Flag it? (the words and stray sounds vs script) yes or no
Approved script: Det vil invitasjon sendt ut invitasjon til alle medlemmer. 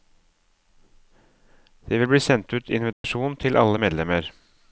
yes